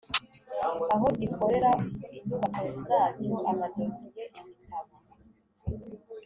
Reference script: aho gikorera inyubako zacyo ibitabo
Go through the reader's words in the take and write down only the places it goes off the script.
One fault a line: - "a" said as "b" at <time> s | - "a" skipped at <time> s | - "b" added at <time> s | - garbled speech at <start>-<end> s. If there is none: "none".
- "amadosiye" added at 3.5 s